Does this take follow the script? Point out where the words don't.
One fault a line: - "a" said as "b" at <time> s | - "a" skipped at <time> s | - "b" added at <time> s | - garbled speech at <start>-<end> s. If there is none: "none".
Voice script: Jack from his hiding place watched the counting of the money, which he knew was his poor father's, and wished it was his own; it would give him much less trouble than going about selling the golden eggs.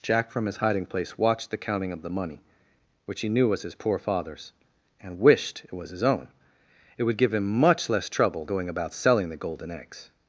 - "than" skipped at 8.4 s